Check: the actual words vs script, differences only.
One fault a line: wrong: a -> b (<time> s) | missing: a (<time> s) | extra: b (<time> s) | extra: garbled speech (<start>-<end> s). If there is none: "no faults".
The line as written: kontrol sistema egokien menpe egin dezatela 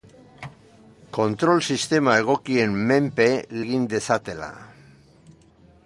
no faults